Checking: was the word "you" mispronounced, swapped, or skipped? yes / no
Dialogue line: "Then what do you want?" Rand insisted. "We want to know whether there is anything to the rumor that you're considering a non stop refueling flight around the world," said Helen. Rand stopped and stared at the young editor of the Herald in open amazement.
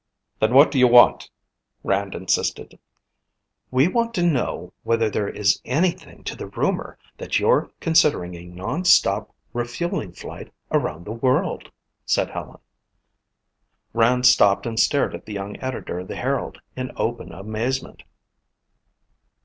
no